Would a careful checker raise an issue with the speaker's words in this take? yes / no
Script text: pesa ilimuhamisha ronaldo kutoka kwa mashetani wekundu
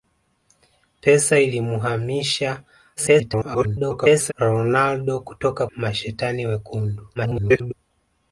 yes